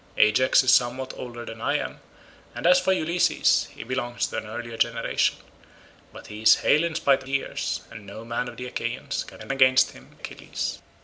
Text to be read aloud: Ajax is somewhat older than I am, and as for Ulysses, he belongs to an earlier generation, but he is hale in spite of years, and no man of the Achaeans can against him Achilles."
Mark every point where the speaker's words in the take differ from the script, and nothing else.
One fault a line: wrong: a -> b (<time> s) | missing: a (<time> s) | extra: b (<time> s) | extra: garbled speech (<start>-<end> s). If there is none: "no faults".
no faults